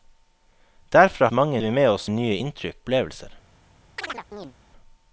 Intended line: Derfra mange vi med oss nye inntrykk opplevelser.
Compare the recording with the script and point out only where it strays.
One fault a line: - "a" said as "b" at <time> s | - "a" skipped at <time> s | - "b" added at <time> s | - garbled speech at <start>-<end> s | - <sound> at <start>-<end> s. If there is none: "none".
- chirp at 4.0-4.5 s